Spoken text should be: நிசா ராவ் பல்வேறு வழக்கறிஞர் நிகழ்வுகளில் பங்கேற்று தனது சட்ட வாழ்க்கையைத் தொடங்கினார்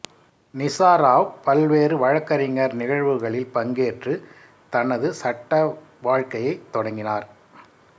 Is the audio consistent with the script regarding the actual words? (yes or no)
yes